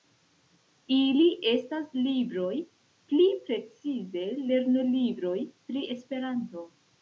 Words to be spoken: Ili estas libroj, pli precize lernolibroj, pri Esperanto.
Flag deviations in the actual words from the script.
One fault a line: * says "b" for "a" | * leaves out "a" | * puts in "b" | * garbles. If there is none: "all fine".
all fine